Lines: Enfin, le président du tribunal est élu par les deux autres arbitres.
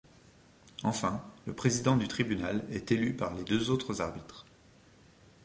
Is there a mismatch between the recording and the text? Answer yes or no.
no